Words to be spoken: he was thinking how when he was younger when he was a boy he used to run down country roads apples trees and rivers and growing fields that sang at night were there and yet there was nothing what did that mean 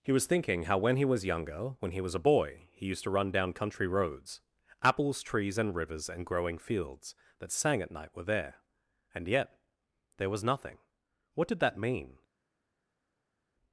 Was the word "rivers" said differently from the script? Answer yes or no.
no